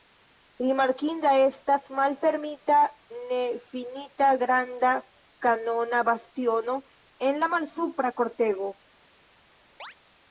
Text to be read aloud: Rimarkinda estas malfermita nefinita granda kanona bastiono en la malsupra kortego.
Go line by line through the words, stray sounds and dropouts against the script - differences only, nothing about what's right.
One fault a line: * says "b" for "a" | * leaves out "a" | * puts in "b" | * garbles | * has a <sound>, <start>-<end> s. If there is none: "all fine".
* has a chirp, 9.8-9.9 s